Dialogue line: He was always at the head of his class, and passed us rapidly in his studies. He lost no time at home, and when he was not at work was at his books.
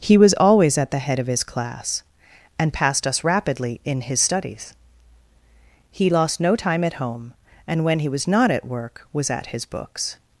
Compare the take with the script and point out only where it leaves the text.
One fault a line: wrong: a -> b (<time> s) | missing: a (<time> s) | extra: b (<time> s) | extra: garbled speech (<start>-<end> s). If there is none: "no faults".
no faults